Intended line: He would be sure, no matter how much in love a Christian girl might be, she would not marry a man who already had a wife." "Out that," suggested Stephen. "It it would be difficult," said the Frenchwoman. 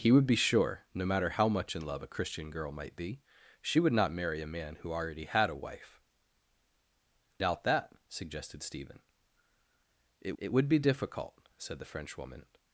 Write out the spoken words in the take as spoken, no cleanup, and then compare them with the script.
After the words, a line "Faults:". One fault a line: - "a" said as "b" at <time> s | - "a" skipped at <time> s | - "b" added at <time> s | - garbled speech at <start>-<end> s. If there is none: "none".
He would be sure, no matter how much in love a Christian girl might be, she would not marry a man who already had a wife." "Out that," suggested Stephen. "It it would be difficult," said the Frenchwoman.
Faults:
none